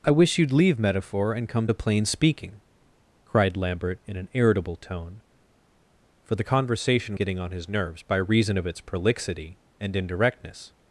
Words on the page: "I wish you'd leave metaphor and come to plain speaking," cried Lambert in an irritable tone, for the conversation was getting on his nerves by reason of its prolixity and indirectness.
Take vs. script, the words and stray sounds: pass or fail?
fail